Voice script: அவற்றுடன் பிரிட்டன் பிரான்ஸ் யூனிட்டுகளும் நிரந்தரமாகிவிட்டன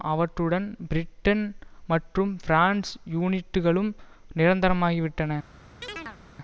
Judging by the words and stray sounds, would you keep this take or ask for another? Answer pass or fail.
fail